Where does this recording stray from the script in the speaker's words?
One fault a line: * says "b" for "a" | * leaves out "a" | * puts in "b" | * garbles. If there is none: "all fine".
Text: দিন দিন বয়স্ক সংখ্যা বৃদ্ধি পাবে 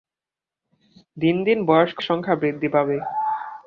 all fine